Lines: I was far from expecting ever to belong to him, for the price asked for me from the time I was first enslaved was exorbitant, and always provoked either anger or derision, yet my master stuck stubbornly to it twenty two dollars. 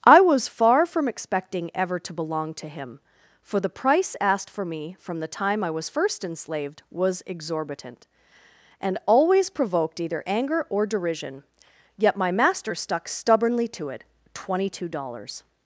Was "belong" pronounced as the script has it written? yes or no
yes